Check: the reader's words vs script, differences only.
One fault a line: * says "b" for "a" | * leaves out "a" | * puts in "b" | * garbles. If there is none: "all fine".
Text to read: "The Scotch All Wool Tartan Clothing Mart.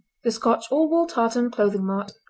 all fine